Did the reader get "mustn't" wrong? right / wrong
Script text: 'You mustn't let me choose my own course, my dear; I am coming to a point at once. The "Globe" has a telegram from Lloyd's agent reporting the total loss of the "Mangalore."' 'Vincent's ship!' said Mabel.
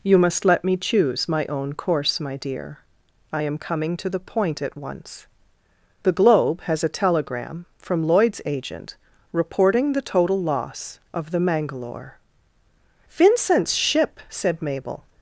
wrong